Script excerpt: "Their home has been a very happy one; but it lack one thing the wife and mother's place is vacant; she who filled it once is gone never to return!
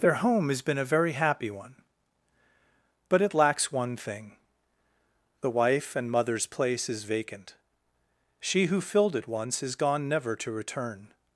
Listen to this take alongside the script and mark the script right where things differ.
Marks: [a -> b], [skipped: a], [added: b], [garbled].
"Their home has been a very happy one; but it [lack -> lacks] one thing the wife and mother's place is vacant; she who filled it once is gone never to return!